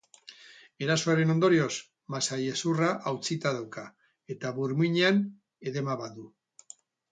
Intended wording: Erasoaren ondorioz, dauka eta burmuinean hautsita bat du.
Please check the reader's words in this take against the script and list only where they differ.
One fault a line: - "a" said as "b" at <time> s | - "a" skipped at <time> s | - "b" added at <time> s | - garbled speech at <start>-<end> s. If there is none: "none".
- "masailezurra hautsita" added at 2.1 s
- "hautsita" said as "edema" at 5.7 s